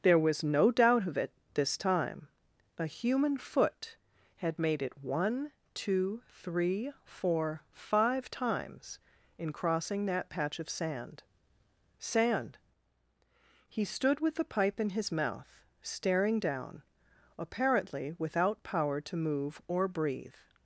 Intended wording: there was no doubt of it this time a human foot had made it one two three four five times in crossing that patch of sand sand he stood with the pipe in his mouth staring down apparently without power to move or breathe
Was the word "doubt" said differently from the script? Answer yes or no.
no